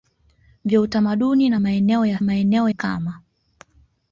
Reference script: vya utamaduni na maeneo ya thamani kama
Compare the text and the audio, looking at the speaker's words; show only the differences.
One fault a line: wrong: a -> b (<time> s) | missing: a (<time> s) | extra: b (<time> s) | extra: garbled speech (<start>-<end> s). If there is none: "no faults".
wrong: thamani -> maeneo (2.2 s)